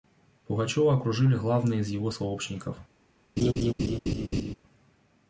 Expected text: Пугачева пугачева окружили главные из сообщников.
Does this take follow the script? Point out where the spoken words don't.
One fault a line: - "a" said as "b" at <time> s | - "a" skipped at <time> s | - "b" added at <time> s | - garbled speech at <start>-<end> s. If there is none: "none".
- "пугачева" skipped at 0.9 s
- "его" added at 1.9 s